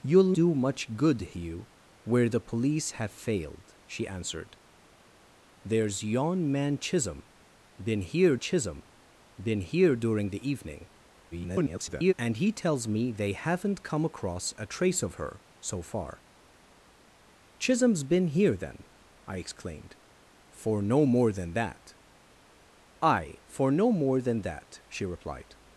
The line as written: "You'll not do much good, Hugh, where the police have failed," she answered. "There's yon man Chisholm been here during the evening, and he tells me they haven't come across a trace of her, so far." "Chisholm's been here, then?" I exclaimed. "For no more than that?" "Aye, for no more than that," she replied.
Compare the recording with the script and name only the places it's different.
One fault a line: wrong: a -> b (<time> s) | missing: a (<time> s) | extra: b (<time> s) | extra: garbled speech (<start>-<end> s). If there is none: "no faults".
missing: not (0.3 s)
extra: Chisholm been here (8.4 s)
extra: garbled speech (11.3-12.1 s)